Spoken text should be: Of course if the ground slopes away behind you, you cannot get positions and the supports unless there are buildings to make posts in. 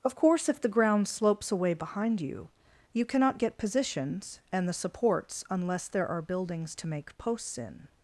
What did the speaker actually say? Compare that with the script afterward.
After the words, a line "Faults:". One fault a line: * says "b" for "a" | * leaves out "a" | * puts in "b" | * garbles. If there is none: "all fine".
Of course if the ground slopes away behind you, you cannot get positions and the supports unless there are buildings to make posts in.
Faults:
all fine